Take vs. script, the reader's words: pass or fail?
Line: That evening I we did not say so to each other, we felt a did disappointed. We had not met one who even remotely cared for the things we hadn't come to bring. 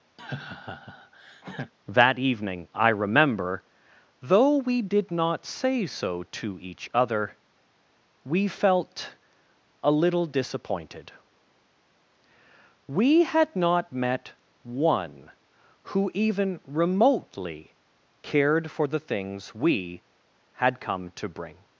fail